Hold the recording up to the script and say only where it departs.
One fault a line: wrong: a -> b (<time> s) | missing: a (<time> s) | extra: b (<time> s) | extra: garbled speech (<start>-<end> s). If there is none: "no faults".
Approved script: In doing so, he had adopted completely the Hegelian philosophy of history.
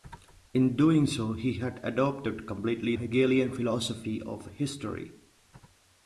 missing: the (3.0 s)